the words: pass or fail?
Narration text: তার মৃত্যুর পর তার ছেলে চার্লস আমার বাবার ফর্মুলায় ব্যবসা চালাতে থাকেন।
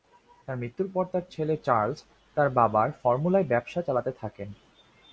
fail